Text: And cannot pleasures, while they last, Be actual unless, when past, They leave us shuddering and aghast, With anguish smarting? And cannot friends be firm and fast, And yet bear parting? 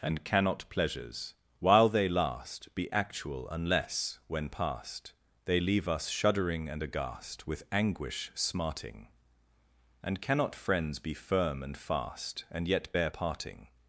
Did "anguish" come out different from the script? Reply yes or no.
no